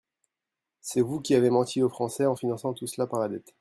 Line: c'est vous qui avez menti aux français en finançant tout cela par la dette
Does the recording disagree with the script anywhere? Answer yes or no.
no